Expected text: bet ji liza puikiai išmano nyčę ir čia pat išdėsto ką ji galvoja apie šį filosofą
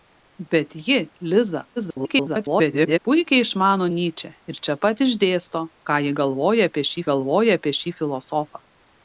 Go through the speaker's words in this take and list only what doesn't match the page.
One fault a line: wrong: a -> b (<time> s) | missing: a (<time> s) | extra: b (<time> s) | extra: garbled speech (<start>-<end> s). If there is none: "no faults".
extra: garbled speech (1.8-3.0 s)
extra: galvoja apie šį (7.1 s)